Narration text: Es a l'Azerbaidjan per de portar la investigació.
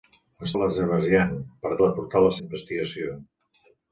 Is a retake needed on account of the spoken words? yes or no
no